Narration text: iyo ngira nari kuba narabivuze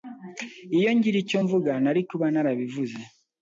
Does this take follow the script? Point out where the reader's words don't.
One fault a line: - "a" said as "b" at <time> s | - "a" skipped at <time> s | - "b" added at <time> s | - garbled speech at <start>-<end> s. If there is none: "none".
- "icyo mvuga" added at 1.2 s